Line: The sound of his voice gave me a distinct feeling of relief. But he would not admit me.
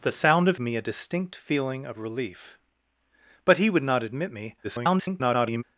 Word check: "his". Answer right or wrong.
wrong